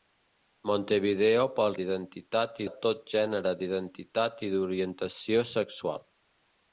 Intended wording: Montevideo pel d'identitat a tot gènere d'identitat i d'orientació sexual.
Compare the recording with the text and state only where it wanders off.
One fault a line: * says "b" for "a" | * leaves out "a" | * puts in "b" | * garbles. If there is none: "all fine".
all fine